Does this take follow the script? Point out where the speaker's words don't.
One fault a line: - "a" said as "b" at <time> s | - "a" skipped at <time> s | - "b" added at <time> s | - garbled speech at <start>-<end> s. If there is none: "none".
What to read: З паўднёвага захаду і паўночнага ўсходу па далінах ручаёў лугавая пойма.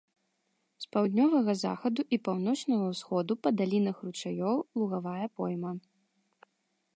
none